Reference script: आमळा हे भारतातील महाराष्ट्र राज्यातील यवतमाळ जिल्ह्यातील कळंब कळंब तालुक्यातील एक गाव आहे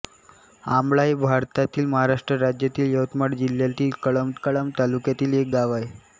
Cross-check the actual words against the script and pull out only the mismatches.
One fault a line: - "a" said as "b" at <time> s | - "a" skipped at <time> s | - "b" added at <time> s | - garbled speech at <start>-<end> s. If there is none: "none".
none